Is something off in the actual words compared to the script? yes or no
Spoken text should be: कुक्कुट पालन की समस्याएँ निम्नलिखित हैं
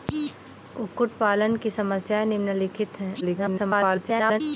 yes